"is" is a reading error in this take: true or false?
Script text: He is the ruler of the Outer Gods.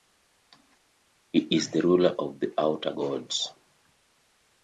false